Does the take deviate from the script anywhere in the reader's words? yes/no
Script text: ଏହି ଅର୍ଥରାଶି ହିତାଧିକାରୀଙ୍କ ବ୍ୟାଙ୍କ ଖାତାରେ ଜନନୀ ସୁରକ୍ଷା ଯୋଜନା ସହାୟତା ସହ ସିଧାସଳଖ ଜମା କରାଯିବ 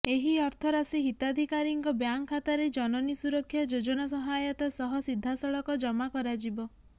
no